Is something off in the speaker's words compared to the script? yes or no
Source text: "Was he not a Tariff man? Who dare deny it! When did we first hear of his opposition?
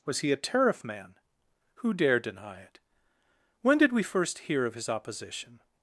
yes